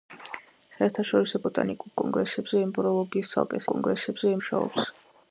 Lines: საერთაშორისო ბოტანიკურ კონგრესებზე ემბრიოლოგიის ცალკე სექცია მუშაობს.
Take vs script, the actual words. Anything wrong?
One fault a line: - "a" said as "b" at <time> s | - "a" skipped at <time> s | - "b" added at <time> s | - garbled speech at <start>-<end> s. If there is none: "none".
- "სექცია" said as "კონგრესებზე" at 3.7 s